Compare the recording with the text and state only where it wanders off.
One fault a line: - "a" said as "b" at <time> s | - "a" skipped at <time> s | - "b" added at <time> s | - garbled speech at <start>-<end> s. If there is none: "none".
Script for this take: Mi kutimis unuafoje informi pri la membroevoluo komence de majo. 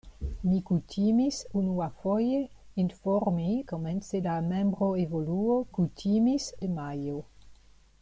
- "pri" said as "komence" at 3.7 s
- "komence" said as "kutimis" at 5.7 s